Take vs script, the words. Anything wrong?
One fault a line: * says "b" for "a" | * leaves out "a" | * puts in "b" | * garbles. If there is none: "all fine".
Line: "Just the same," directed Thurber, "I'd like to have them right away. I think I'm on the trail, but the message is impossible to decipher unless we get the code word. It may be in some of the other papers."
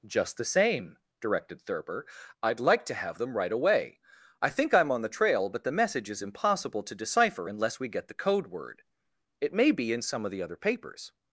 all fine